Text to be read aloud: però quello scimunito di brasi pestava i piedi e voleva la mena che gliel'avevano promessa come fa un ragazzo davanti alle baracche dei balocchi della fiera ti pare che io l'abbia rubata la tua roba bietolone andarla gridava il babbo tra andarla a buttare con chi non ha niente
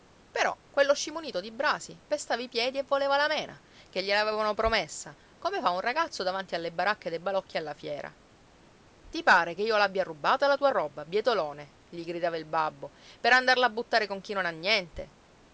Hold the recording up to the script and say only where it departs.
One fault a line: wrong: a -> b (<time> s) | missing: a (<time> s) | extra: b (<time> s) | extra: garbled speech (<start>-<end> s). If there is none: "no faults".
wrong: della -> alla (7.6 s)
wrong: andarla -> gli (11.9 s)
wrong: tra -> per (13.2 s)